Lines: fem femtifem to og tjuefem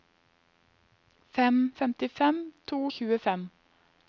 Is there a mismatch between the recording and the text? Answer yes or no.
no